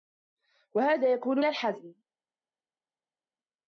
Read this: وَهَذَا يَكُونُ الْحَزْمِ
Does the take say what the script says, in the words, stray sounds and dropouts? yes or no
yes